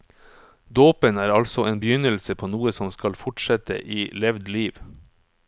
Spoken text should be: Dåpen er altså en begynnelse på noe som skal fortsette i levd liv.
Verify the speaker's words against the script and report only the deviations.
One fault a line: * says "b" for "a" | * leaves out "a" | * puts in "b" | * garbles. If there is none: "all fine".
all fine